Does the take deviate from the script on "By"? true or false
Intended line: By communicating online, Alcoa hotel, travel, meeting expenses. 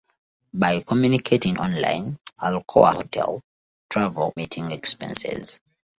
false